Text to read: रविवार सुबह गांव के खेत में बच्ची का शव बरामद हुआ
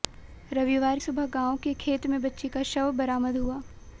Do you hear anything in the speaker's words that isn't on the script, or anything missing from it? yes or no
no